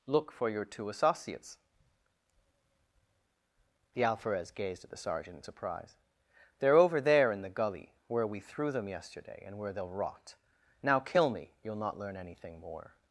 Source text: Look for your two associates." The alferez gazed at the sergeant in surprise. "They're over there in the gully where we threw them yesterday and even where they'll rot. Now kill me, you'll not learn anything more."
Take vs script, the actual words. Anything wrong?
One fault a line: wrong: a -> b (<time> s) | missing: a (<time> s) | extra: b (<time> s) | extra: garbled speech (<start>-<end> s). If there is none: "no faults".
missing: even (9.6 s)